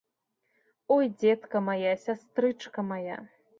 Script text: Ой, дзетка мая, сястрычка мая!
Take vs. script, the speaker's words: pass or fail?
pass